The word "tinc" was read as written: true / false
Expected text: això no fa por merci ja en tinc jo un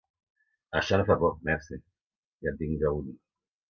true